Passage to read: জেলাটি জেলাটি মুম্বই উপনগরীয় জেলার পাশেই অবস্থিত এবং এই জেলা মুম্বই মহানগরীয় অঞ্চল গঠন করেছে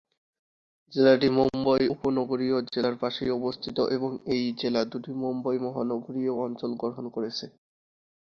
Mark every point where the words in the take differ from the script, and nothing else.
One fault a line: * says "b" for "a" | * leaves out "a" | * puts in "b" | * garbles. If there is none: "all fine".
* leaves out "জেলাটি"
* puts in "দুটি"